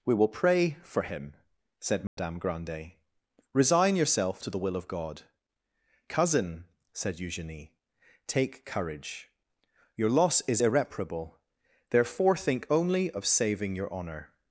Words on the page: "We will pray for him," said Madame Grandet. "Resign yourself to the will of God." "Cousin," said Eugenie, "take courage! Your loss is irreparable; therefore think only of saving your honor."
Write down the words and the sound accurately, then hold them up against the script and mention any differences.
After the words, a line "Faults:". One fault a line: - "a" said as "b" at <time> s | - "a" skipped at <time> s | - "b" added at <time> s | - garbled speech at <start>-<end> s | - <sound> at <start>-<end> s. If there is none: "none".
"We will pray for him," said Madame Grandet. "Resign yourself to the will of God." "Cousin," said Eugenie, "take courage! Your loss is irreparable; therefore think only of saving your honor."
Faults:
- dropout at 2.1-2.2 s